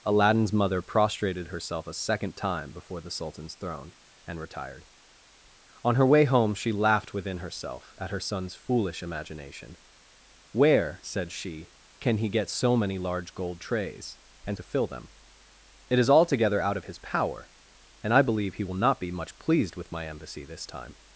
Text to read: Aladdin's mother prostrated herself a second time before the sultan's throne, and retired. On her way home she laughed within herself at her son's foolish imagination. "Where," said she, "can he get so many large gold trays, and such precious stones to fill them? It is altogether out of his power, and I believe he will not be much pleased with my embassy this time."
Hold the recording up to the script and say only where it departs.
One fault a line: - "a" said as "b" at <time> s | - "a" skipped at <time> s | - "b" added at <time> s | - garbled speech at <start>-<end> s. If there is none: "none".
- "such precious stones" skipped at 14.6 s